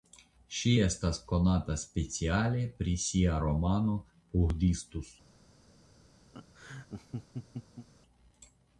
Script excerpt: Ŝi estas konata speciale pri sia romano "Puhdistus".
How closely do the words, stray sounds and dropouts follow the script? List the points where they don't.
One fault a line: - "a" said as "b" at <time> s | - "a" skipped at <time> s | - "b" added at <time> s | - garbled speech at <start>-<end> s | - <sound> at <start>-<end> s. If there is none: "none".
- laugh at 6.3-7.9 s